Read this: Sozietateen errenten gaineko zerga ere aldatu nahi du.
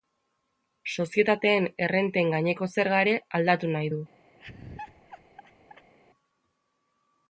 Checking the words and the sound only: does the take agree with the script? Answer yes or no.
no